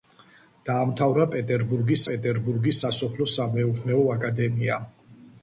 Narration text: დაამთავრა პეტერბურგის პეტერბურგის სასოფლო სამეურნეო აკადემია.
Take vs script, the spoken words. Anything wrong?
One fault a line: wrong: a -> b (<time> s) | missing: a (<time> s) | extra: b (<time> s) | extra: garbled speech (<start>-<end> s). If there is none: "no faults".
no faults